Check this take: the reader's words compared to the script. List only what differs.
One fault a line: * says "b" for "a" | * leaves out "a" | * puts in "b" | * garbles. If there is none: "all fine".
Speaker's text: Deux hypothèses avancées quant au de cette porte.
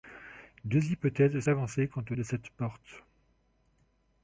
all fine